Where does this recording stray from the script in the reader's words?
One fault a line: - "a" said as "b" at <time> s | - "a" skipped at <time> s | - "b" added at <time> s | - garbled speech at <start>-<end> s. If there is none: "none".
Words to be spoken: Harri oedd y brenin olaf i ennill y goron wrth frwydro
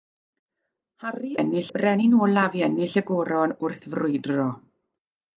- "oedd" said as "ennill" at 1.4 s